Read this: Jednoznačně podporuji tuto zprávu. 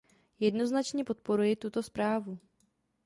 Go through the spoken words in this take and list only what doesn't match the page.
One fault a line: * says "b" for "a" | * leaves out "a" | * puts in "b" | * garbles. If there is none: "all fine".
all fine